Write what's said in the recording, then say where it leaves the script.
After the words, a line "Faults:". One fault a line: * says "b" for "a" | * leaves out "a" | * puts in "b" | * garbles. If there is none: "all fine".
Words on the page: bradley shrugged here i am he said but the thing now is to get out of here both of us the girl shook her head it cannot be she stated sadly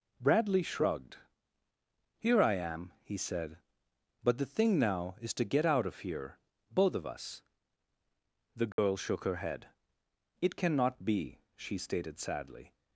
bradley shrugged here i am he said but the thing now is to get out of here both of us the girl shook her head it cannot be she stated sadly
Faults:
all fine